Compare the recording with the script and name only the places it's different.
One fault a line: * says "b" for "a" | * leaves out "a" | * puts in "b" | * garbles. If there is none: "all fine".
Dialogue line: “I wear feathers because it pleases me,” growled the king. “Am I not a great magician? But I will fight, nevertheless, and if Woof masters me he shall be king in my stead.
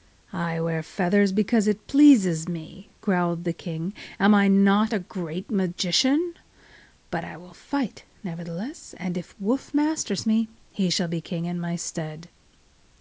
all fine